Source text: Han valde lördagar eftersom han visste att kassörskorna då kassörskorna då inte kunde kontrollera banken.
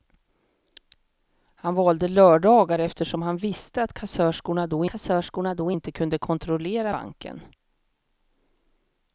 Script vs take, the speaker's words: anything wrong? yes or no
no